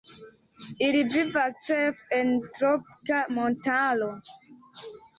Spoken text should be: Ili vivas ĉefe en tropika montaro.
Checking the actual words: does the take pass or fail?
pass